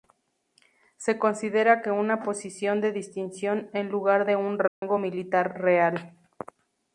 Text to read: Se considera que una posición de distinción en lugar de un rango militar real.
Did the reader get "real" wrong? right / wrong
right